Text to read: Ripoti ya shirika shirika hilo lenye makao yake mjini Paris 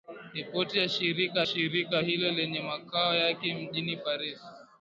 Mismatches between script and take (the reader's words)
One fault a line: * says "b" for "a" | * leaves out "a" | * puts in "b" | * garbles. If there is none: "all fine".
all fine